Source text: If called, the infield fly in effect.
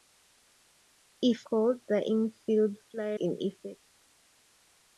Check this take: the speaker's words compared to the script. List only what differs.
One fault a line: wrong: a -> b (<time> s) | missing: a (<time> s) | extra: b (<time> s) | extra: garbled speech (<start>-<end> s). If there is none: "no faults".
no faults